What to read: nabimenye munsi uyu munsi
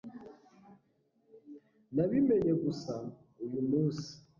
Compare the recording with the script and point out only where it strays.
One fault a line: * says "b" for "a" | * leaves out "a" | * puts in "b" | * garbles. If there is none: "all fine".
* says "gusa" for "munsi"